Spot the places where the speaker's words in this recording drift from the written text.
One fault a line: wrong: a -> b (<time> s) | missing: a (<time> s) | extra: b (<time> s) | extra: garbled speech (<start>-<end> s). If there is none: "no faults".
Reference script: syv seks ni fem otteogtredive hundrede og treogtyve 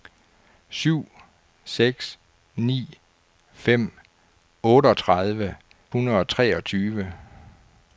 no faults